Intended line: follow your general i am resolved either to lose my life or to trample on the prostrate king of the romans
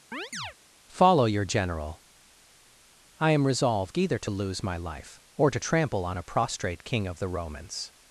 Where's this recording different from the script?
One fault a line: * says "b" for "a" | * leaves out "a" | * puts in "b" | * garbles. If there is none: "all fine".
* says "a" for "the"